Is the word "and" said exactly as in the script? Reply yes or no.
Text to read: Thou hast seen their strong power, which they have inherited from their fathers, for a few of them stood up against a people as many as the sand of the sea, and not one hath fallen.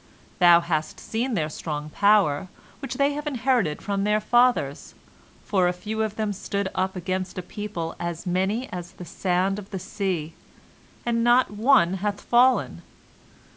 yes